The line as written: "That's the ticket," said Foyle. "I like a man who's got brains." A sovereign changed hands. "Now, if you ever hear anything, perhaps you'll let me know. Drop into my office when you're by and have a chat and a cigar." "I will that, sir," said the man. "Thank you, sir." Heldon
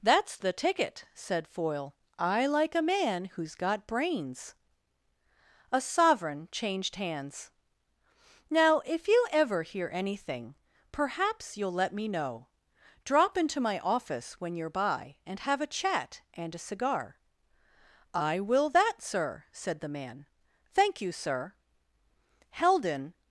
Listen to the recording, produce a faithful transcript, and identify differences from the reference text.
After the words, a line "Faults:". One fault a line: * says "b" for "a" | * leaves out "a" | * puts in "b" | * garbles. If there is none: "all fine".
"That's the ticket," said Foyle. "I like a man who's got brains." A sovereign changed hands. "Now, if you ever hear anything, perhaps you'll let me know. Drop into my office when you're by and have a chat and a cigar." "I will that, sir," said the man. "Thank you, sir." Heldon
Faults:
all fine